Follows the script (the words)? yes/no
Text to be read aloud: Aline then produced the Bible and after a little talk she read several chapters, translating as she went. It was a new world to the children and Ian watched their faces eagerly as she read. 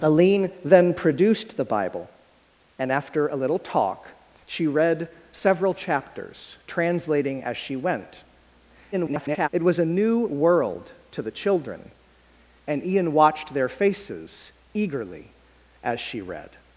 no